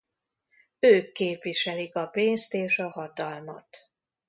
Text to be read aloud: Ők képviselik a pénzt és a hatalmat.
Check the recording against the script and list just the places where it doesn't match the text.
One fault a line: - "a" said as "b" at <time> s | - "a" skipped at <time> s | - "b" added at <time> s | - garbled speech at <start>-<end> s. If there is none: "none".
none